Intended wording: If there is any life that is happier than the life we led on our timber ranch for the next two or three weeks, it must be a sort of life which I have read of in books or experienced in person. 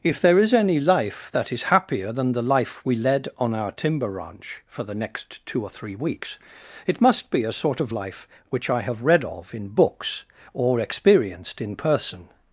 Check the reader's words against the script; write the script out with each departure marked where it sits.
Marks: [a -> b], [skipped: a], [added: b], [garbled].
If there is any life that is happier than the life we led on our timber ranch for the next two or three weeks, it must be a sort of life which I have read of in books or experienced in person.